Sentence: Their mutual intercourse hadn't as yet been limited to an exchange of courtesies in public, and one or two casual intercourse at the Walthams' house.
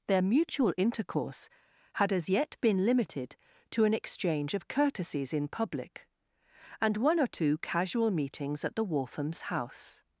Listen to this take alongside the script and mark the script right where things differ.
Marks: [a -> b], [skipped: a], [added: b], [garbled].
Their mutual intercourse [hadn't -> had] as yet been limited to an exchange of courtesies in public, and one or two casual [intercourse -> meetings] at the Walthams' house.